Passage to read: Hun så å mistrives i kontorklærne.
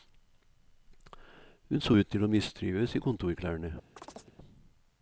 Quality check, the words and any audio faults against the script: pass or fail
fail